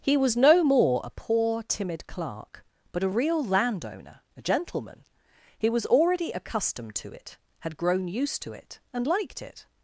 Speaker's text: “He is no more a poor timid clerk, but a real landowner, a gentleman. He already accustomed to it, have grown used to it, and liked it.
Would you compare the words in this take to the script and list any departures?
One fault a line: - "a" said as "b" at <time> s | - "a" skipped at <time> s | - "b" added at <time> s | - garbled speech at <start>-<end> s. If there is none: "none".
- "is" said as "was" at 0.2 s
- "was" added at 5.7 s
- "have" said as "had" at 7.6 s